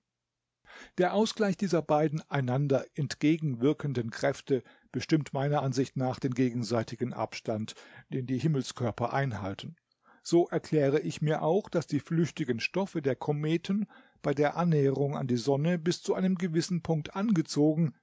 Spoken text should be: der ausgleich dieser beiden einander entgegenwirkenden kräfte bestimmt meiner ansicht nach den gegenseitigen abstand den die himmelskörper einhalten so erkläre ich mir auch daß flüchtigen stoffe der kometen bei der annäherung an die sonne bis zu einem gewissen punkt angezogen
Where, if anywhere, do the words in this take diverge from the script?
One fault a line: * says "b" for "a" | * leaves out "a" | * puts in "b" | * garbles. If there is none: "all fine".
* puts in "die"